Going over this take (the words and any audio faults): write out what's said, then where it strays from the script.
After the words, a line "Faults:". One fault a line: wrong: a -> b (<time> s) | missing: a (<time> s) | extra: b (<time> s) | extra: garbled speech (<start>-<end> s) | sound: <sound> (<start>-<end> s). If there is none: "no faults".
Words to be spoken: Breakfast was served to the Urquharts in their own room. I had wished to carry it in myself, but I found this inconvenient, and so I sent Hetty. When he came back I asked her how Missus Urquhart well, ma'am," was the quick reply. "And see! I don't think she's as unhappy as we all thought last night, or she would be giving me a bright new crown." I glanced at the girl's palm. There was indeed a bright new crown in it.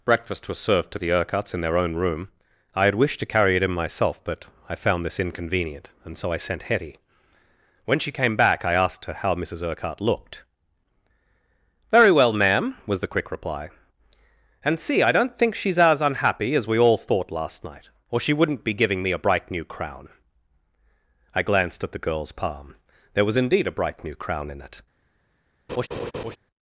Breakfast was served to the Urquharts in their own room. I had wished to carry it in myself, but I found this inconvenient, and so I sent Hetty. When she came back I asked her how Missus Urquhart looked. "Very well, ma'am," was the quick reply. "And see! I don't think she's as unhappy as we all thought last night, or she wouldn't be giving me a bright new crown." I glanced at the girl's palm. There was indeed a bright new crown in it.
Faults:
wrong: he -> she (8.0 s)
extra: looked Very (10.0 s)
wrong: would -> wouldn't (18.3 s)
sound: laugh (25.7-26.4 s)